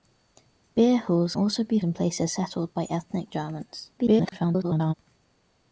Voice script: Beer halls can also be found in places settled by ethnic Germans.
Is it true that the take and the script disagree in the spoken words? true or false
true